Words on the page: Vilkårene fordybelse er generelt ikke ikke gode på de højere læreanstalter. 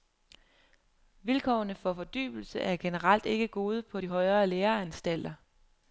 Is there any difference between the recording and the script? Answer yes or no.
yes